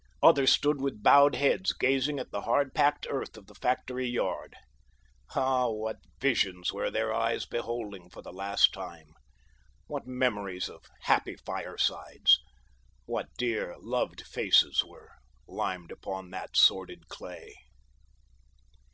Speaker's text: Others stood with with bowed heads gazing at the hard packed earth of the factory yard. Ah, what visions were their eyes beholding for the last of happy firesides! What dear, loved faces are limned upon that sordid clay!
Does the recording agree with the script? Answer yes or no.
no